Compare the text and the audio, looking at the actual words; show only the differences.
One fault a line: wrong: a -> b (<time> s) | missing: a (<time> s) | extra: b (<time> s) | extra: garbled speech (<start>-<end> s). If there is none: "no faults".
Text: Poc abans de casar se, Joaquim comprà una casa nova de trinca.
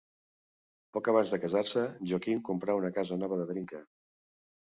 no faults